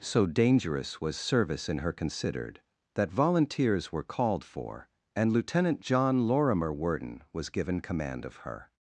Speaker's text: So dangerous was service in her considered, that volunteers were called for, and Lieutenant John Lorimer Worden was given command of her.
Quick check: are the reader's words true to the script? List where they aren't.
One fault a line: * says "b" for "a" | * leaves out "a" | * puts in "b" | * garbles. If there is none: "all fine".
all fine